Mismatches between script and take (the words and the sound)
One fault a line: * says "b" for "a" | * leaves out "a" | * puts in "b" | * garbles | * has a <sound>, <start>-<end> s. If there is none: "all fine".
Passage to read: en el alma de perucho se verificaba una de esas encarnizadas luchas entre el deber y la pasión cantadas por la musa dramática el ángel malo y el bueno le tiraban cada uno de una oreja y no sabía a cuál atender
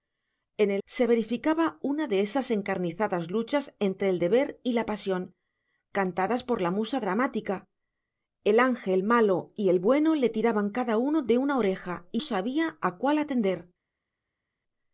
* leaves out "alma de perucho"
* leaves out "no"